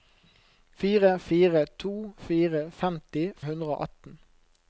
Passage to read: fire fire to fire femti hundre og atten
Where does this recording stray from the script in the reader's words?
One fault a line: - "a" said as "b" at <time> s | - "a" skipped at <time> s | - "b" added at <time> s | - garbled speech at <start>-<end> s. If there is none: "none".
none